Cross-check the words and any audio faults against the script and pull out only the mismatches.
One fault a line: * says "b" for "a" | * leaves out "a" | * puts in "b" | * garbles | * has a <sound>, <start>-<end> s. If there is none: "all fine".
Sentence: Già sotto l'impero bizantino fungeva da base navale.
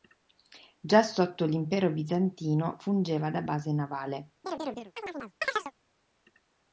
* has a chirp, 4.4-5.7 s